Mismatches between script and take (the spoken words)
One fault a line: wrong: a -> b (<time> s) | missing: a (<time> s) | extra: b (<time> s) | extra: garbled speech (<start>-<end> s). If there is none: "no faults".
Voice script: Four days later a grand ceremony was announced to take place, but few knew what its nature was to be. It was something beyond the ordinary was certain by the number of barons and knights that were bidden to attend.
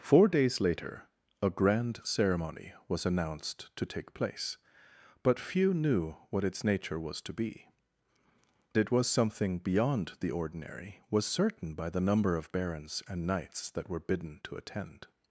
no faults